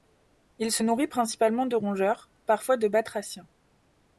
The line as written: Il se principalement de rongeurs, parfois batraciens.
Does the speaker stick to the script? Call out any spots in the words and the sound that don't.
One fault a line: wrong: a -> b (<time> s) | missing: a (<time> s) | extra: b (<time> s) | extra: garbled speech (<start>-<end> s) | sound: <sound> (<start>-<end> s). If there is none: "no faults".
extra: nourrit (0.8 s)
extra: de (2.8 s)